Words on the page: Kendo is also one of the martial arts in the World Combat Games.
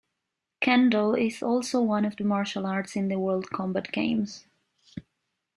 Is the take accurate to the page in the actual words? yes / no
yes